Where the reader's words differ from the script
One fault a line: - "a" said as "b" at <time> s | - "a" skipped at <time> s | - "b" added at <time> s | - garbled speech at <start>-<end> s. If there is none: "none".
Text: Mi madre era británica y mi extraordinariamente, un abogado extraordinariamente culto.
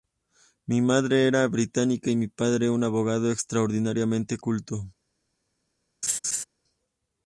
- "extraordinariamente" said as "padre" at 2.3 s